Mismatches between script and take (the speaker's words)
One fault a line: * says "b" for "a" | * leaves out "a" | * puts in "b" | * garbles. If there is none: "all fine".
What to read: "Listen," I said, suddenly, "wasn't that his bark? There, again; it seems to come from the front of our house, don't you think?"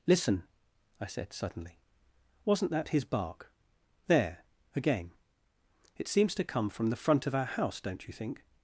all fine